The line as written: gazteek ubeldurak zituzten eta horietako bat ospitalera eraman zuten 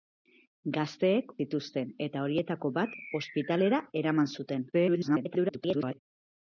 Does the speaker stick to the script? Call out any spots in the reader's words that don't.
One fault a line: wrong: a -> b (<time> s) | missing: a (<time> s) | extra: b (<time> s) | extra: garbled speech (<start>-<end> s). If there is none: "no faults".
missing: ubeldurak (1.3 s)
extra: garbled speech (4.7-6.0 s)